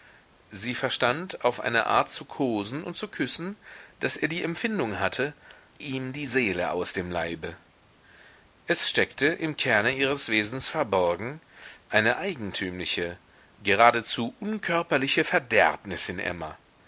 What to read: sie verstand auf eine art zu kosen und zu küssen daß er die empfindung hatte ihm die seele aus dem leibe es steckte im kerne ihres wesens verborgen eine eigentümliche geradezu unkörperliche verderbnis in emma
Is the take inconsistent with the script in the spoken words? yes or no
no